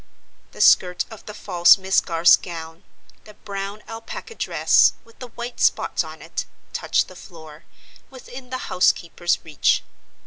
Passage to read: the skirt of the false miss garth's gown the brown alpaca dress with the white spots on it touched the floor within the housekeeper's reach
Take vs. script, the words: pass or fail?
pass